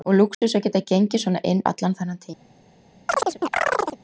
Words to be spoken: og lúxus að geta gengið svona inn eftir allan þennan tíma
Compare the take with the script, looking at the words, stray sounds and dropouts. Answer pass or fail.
fail